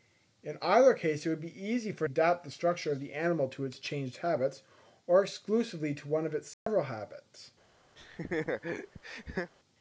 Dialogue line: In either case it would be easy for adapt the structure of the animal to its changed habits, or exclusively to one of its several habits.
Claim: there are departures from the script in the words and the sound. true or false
true